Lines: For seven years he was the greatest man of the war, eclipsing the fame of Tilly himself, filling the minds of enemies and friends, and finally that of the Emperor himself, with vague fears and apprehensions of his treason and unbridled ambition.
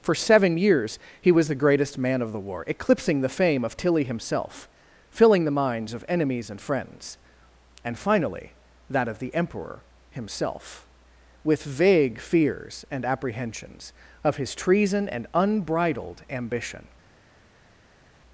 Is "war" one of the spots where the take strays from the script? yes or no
no